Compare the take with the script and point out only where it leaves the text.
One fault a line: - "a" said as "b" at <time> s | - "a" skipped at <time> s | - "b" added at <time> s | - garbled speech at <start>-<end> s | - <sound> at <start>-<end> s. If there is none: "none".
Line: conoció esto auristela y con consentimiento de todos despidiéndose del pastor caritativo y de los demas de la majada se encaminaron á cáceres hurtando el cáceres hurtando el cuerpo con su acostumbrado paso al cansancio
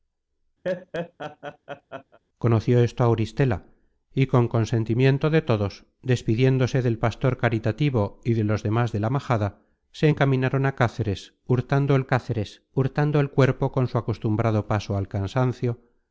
- laugh at 0.6-2.2 s